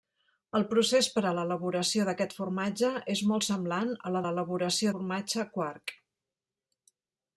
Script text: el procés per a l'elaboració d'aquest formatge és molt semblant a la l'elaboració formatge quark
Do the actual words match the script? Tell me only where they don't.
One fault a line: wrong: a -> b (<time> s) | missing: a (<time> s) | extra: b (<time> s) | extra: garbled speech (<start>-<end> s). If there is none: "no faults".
no faults